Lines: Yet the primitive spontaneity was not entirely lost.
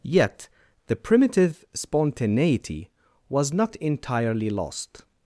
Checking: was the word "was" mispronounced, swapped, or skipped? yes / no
no